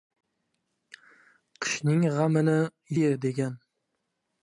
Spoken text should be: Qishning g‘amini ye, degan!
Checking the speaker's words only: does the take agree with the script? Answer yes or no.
yes